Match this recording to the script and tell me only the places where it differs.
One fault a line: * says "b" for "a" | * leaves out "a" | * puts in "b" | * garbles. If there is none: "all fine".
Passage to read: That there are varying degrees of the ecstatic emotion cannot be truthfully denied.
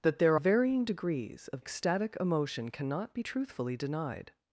* leaves out "are"
* leaves out "the"